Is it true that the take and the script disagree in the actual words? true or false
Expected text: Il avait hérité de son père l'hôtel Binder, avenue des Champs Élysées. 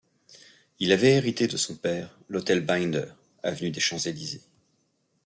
false